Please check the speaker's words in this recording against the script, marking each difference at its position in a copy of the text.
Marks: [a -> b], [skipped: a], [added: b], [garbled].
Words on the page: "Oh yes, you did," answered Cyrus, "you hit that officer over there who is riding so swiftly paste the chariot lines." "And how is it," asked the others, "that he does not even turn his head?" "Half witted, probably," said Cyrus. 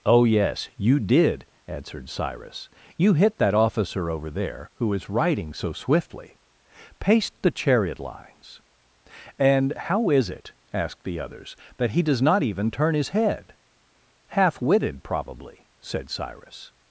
"Oh yes, you did," answered Cyrus, "you hit that officer over there who is riding so swiftly paste the chariot lines." "And how is it," asked the others, "that he does not even turn his head?" "Half witted, probably," said Cyrus.